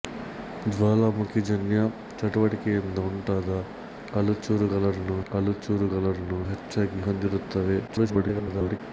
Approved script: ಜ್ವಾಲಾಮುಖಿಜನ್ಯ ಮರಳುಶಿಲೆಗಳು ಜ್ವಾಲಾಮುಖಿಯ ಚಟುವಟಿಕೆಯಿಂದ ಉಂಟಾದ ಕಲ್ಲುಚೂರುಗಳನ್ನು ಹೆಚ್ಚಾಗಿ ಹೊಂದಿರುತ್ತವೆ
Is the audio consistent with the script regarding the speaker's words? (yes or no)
no